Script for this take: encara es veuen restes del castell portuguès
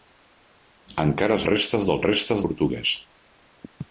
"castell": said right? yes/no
no